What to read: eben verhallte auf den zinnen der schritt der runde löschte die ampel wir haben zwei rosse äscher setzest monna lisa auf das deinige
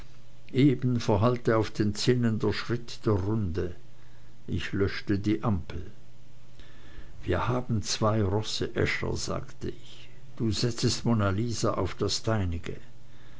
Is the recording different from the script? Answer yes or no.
yes